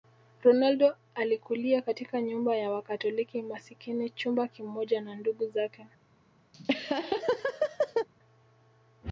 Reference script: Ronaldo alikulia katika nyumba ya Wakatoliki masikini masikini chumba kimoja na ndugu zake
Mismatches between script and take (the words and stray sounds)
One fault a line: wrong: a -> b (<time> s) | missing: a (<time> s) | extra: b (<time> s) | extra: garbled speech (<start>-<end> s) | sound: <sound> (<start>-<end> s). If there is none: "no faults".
missing: masikini (4.1 s)
sound: laugh (6.5-8.1 s)